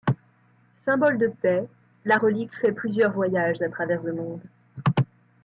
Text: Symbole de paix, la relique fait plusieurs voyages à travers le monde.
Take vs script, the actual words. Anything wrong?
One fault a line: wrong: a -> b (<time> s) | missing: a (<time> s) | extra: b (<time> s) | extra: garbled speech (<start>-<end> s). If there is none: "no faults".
no faults